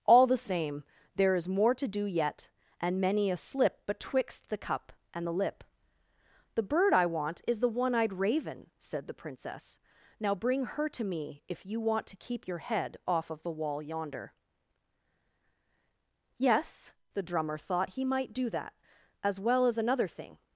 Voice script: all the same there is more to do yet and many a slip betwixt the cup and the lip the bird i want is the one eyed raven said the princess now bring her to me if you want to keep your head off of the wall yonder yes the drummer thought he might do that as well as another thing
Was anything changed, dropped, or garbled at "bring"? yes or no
no